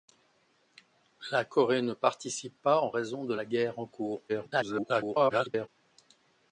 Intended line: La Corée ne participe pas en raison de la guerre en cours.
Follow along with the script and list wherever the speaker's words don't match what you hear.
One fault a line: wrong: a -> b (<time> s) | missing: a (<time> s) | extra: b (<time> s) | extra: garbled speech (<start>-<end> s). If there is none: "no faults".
extra: garbled speech (4.3-5.7 s)